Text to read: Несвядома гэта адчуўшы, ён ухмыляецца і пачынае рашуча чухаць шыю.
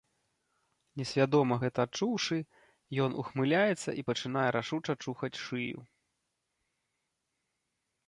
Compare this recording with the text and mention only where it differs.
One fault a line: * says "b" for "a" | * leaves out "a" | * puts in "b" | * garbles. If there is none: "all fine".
all fine